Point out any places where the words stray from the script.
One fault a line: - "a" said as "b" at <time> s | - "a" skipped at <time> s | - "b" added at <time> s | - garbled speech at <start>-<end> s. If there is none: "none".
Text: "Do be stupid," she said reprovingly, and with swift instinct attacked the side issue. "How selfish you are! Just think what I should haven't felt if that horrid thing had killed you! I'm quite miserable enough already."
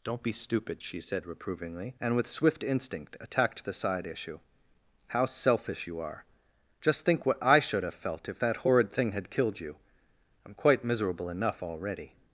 - "Do" said as "Don't" at 0.0 s
- "haven't" said as "have" at 7.8 s